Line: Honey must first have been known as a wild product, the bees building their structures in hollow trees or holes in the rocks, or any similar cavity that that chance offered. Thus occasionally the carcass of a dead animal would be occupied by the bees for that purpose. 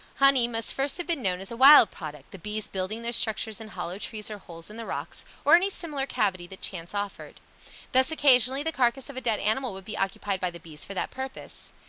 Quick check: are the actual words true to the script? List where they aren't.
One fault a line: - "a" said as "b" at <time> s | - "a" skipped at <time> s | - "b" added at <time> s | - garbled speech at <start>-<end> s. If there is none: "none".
- "that" skipped at 6.6 s